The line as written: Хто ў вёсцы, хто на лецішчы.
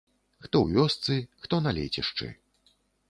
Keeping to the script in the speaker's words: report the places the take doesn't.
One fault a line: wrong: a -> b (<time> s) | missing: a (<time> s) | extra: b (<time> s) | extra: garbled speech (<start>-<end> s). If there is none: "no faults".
no faults